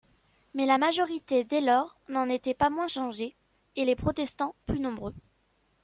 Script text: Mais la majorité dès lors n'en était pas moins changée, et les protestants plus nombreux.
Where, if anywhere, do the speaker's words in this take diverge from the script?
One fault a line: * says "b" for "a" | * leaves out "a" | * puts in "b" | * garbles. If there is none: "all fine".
all fine